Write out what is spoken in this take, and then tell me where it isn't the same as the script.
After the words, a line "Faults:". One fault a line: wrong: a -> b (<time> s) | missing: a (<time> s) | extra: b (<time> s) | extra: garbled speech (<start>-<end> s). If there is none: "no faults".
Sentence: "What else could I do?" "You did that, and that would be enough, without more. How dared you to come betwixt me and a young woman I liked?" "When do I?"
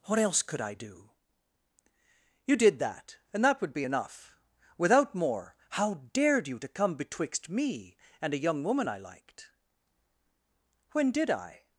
"What else could I do?" "You did that, and that would be enough, without more. How dared you to come betwixt me and a young woman I liked?" "When did I?"
Faults:
wrong: do -> did (11.1 s)